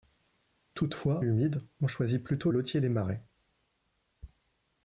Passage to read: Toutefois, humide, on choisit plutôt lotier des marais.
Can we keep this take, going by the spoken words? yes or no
yes